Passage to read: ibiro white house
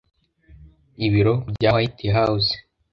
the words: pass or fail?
fail